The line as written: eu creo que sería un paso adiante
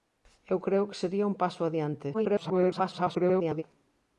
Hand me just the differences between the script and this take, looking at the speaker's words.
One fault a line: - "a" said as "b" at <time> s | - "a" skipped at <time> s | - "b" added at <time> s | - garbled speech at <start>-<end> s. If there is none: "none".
- garbled speech at 2.1-3.6 s